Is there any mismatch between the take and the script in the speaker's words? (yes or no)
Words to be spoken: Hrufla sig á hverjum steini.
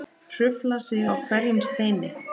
no